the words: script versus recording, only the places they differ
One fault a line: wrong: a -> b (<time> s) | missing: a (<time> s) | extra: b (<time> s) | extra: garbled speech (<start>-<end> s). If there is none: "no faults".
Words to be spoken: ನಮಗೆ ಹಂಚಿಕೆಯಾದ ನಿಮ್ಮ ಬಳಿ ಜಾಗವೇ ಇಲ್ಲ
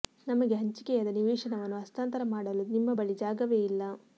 extra: ನಿವೇಶನವನ್ನು ಹಸ್ತಾಂತರ ಮಾಡಲು (1.2 s)